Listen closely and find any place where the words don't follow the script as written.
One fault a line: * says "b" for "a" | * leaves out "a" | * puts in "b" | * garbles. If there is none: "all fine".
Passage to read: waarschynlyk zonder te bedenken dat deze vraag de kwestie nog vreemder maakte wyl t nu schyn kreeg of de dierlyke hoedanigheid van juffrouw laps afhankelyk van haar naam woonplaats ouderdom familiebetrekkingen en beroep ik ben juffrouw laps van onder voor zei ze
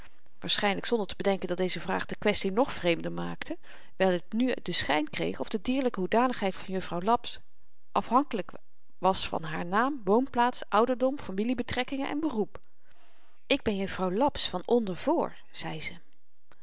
* puts in "den"
* puts in "was"